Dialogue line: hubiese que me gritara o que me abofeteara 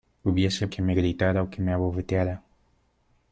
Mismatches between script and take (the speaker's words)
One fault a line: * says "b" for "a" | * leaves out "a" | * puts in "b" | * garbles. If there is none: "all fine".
all fine